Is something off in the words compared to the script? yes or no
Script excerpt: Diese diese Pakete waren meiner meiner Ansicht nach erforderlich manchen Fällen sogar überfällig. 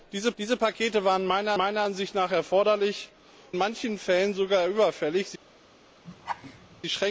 no